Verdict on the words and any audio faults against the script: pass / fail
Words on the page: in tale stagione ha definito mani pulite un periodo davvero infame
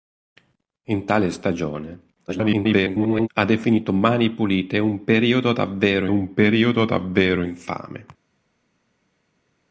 fail